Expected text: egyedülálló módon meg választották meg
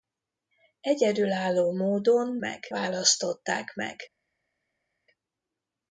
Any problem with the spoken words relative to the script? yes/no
no